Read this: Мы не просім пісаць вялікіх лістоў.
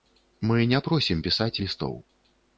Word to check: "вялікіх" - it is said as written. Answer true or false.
false